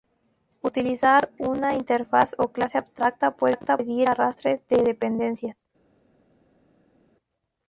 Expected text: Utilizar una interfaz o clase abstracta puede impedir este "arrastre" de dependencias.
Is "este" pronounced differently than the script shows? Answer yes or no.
yes